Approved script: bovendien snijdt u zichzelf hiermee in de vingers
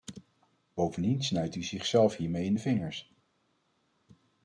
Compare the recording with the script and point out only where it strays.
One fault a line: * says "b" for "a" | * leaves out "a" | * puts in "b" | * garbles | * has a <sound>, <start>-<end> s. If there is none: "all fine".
all fine